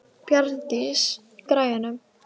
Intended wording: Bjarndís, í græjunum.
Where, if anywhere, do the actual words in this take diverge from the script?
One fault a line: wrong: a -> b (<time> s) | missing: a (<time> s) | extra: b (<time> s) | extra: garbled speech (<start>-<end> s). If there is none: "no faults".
no faults